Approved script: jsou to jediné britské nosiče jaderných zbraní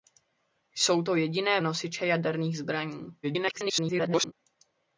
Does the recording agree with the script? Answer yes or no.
no